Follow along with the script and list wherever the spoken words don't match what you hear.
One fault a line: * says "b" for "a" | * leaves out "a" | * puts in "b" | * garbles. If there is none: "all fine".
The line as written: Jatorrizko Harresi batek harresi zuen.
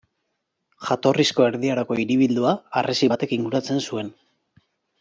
* puts in "Erdi Aroko hiribildua"
* says "inguratzen" for "harresi"